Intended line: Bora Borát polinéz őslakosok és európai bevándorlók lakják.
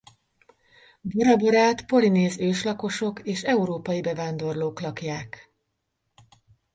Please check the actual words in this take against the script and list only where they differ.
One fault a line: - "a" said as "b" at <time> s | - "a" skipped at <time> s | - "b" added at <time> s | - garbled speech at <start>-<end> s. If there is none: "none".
none